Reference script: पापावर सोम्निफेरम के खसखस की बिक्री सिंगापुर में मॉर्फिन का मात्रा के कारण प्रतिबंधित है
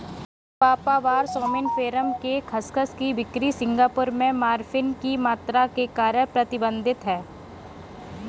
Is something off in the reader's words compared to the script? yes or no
yes